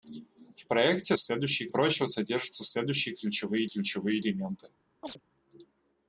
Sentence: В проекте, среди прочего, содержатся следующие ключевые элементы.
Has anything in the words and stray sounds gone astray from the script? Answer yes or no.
yes